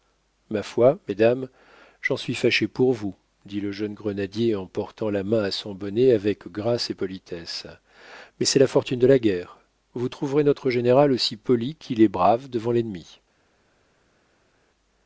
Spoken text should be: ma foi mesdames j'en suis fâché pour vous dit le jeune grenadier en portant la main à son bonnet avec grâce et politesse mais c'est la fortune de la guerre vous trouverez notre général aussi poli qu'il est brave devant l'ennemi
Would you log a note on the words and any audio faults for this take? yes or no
no